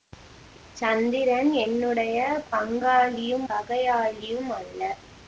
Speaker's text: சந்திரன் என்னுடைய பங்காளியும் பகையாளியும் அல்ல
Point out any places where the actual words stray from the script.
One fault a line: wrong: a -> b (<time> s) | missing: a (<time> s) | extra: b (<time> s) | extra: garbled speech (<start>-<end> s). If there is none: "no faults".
no faults